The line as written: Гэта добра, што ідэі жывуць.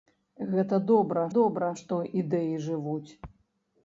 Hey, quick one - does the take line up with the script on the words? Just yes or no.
no